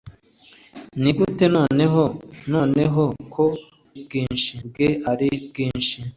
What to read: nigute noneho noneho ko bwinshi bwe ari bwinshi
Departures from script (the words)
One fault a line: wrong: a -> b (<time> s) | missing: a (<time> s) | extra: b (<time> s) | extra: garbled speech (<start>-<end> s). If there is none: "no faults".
no faults